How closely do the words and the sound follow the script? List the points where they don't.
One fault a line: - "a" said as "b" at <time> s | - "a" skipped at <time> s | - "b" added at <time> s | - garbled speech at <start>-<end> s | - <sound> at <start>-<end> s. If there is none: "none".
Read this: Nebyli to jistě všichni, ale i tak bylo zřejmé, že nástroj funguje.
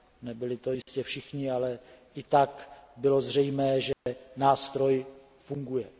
- dropout at 0.8-0.9 s
- dropout at 3.9-4.1 s